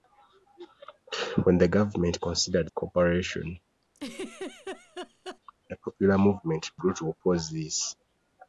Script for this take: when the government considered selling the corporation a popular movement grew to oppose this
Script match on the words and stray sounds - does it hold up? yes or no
no